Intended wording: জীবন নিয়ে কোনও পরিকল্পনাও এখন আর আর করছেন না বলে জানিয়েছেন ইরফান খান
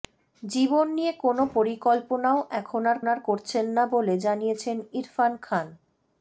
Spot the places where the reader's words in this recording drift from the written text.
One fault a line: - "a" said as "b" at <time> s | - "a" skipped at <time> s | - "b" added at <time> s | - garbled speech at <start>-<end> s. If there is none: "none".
none